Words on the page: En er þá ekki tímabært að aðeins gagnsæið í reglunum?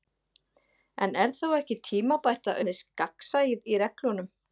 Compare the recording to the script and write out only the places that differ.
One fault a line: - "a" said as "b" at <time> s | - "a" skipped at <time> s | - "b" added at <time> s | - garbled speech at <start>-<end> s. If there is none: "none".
none